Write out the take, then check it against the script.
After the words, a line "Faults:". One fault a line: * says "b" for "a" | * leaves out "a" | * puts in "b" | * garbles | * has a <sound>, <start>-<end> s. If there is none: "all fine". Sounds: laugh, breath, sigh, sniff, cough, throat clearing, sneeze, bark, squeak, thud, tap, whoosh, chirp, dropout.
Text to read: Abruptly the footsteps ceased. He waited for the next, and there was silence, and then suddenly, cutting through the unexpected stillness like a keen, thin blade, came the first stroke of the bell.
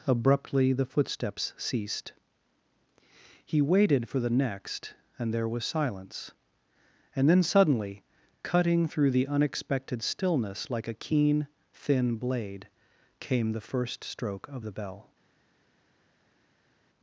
Abruptly the footsteps ceased. He waited for the next, and there was silence, and then suddenly, cutting through the unexpected stillness like a keen, thin blade, came the first stroke of the bell.
Faults:
all fine